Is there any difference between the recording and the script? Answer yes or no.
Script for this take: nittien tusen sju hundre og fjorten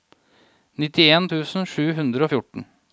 no